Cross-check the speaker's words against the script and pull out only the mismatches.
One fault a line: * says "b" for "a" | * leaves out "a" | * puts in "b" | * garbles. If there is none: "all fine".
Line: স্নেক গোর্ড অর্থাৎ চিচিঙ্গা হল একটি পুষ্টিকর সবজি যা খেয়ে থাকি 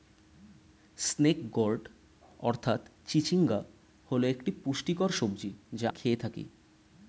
all fine